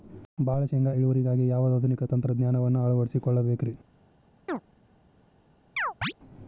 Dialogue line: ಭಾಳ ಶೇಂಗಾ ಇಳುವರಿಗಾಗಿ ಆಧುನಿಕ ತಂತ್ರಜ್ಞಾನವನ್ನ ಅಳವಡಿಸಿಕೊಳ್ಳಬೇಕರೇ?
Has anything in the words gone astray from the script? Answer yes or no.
yes